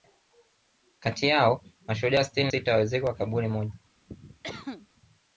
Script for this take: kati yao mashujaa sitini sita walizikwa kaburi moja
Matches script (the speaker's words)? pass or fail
pass